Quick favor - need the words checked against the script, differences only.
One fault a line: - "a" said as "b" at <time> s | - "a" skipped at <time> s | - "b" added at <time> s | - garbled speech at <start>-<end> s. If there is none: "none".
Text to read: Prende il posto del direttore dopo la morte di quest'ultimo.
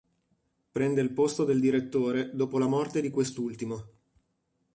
none